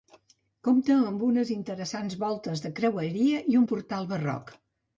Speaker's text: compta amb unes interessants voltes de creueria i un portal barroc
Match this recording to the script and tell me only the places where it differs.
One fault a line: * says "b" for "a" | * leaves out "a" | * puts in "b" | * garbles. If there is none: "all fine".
all fine